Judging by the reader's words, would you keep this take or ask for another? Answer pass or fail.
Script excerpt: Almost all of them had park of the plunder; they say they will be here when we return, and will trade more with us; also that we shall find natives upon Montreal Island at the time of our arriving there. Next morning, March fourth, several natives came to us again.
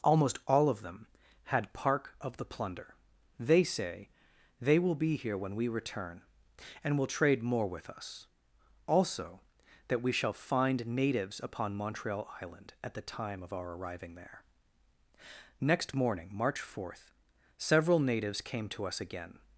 pass